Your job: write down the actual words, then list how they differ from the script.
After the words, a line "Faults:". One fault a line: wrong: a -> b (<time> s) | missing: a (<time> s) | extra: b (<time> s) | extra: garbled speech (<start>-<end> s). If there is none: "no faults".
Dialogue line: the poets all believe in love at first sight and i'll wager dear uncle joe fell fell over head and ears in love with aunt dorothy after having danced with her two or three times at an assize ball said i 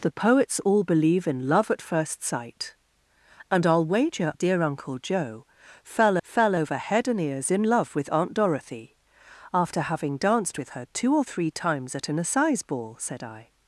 the poets all believe in love at first sight and i'll wager dear uncle joe fell fell over head and ears in love with aunt dorothy after having danced with her two or three times at an assize ball said i
Faults:
no faults